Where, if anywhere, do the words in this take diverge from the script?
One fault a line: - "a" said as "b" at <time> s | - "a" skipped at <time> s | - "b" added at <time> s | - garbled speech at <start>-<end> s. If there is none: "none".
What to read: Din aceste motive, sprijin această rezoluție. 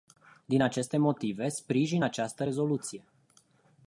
none